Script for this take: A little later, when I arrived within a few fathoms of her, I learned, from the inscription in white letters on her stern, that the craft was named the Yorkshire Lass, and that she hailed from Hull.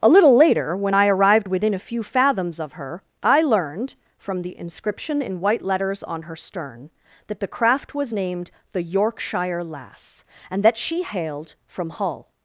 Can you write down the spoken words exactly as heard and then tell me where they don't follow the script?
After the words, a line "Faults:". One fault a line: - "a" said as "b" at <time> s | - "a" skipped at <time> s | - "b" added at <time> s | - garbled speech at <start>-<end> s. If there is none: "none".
A little later, when I arrived within a few fathoms of her, I learned, from the inscription in white letters on her stern, that the craft was named the Yorkshire Lass, and that she hailed from Hull.
Faults:
none